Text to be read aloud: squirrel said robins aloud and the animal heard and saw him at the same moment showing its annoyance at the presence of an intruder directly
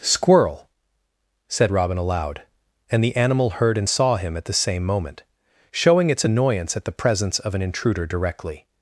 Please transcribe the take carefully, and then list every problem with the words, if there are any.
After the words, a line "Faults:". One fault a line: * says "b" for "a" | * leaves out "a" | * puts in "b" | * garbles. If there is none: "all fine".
squirrel said robin aloud and the animal heard and saw him at the same moment showing its annoyance at the presence of an intruder directly
Faults:
* says "robin" for "robins"